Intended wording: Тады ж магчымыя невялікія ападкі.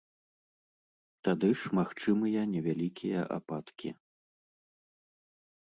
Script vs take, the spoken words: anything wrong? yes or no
no